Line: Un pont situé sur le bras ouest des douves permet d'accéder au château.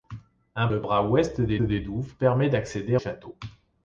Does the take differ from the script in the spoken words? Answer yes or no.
yes